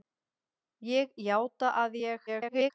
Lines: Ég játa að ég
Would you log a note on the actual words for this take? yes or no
yes